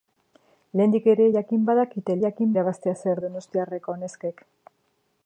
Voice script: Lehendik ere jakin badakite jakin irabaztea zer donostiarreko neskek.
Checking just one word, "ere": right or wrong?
right